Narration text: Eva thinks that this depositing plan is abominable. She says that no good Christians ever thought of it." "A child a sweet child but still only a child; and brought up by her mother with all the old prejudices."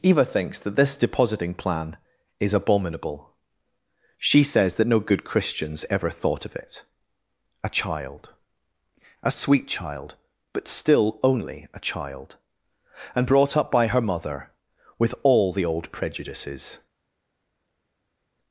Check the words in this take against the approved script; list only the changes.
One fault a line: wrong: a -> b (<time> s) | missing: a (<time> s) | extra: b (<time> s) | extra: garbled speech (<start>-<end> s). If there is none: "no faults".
no faults